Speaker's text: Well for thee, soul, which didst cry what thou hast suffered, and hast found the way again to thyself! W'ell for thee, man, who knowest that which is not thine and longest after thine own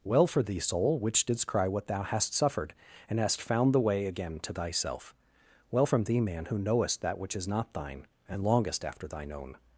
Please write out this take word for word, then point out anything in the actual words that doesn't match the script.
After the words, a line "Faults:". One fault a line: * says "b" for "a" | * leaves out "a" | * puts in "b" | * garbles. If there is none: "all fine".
Well for thee, soul, which didst cry what thou hast suffered, and hast found the way again to thyself! W'ell from thee, man, who knowest that which is not thine and longest after thine own
Faults:
* says "from" for "for"